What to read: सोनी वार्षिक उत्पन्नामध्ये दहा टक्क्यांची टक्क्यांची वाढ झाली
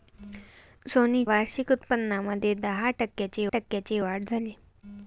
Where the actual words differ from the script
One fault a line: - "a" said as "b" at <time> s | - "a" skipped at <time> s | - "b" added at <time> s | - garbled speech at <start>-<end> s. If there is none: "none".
none